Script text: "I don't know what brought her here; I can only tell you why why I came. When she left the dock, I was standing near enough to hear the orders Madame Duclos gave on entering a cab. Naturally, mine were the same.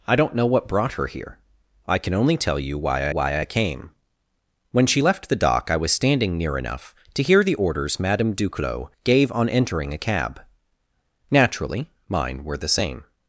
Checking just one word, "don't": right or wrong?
right